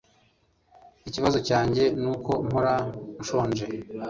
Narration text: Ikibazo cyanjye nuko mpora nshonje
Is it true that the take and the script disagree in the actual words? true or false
false